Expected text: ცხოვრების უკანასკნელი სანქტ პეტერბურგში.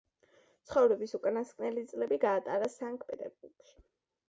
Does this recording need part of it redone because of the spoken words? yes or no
yes